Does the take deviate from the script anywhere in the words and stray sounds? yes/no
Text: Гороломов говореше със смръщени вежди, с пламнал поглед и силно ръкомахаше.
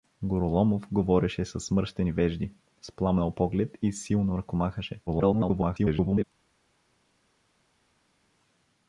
yes